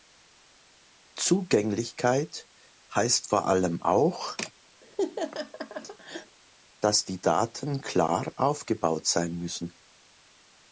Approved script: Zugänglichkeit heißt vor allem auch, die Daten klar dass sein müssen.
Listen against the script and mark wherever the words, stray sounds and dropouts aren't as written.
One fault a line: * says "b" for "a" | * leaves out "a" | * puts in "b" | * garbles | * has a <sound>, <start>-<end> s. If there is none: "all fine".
* has a laugh, 4.8-6.4 s
* puts in "dass"
* says "aufgebaut" for "dass"